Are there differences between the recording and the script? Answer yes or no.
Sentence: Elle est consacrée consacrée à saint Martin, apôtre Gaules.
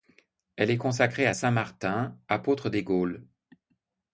yes